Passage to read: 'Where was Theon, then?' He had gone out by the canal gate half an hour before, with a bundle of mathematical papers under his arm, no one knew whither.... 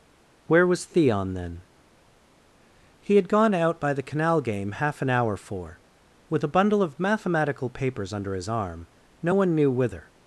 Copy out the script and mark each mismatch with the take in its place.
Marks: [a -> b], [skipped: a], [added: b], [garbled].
'Where was Theon, then?' He had gone out by the canal [gate -> game] half an hour [before, -> for] with a bundle of mathematical papers under his arm, no one knew whither....